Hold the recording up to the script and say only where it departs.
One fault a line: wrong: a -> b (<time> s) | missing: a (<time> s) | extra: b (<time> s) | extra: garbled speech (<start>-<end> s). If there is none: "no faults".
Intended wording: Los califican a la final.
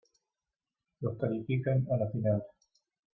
no faults